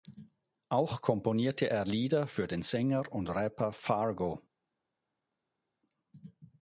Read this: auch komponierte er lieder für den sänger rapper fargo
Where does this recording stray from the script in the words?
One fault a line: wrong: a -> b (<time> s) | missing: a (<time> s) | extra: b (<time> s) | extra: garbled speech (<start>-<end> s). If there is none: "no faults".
extra: und (3.1 s)